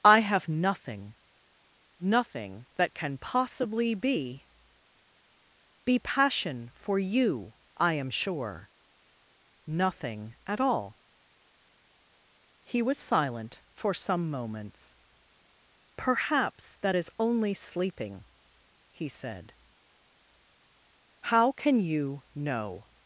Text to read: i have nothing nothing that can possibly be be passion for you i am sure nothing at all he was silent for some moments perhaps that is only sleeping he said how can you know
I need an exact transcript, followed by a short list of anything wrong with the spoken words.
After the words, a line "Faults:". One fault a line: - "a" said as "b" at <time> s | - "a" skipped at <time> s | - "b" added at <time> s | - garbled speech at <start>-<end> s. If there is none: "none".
i have nothing nothing that can possibly be be passion for you i am sure nothing at all he was silent for some moments perhaps that is only sleeping he said how can you know
Faults:
none